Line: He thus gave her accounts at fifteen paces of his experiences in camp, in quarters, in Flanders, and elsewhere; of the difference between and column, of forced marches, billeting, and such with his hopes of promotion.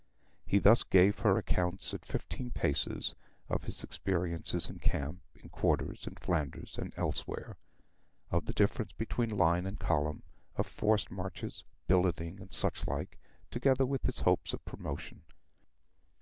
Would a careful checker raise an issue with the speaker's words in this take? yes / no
yes